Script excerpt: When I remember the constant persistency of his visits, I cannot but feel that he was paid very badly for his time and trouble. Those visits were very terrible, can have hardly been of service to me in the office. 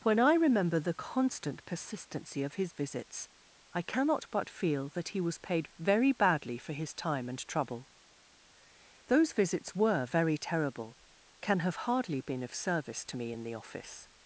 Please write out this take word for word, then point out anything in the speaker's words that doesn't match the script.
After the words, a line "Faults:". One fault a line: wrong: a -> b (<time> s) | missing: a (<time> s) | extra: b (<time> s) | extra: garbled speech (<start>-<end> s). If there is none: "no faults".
When I remember the constant persistency of his visits, I cannot but feel that he was paid very badly for his time and trouble. Those visits were very terrible, can have hardly been of service to me in the office.
Faults:
no faults